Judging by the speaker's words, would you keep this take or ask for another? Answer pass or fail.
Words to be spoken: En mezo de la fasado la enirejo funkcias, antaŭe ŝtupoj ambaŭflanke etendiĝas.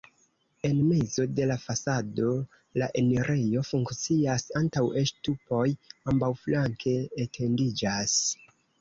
pass